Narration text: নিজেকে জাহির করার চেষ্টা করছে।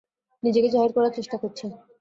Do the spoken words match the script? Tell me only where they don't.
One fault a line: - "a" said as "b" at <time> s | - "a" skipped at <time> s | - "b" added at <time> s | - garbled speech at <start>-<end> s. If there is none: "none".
none